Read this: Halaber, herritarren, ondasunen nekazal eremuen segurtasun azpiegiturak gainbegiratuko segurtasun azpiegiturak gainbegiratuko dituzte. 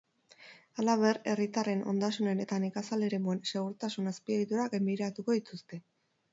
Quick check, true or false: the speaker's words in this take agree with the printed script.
false